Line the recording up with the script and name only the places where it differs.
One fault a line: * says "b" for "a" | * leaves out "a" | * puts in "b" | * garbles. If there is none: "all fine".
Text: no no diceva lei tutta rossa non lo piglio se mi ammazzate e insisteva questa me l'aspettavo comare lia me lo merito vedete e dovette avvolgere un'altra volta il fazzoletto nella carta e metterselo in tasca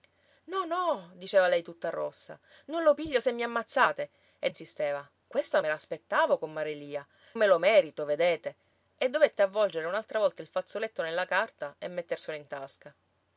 all fine